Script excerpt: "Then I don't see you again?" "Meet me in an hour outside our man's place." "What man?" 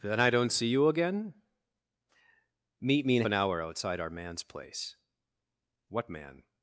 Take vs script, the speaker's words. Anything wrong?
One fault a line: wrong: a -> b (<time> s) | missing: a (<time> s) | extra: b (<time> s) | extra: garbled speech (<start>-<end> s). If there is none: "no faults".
no faults